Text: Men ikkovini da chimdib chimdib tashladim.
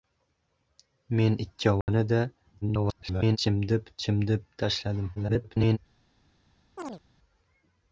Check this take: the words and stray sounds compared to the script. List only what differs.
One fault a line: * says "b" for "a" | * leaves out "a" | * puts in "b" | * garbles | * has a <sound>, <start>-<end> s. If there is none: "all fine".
* has a dropout, 1.8-1.9 s
* garbles
* garbles
* has a chirp, 6.8-7.0 s